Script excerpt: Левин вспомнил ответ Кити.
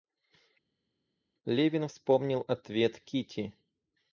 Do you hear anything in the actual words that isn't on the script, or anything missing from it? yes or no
no